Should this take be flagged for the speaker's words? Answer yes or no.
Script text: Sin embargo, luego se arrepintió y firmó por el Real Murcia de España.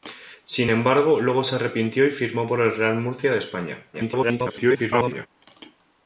yes